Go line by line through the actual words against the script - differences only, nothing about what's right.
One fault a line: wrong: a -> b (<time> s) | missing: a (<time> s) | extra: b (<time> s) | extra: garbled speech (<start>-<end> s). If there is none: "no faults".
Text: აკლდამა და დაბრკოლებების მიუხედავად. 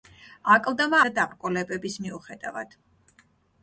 no faults